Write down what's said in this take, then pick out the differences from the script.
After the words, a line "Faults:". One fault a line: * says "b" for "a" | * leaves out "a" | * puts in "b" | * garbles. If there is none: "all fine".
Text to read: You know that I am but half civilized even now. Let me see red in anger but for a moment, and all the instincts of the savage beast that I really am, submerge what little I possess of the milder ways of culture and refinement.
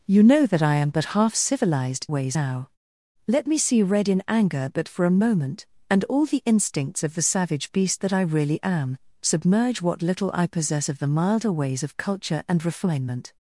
You know that I am but half civilized ways now. Let me see red in anger but for a moment, and all the instincts of the savage beast that I really am, submerge what little I possess of the milder ways of culture and refinement.
Faults:
* says "ways" for "even"